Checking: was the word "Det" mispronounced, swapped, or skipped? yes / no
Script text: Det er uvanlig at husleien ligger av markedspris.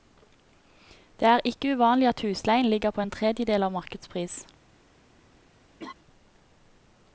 no